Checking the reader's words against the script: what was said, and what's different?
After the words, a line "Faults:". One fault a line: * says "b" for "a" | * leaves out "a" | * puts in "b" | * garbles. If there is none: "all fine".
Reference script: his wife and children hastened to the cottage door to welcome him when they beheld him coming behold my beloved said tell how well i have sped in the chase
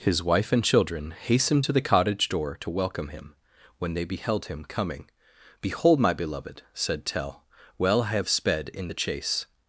his wife and children hastened to the cottage door to welcome him when they beheld him coming behold my beloved said tell well i have sped in the chase
Faults:
* leaves out "how"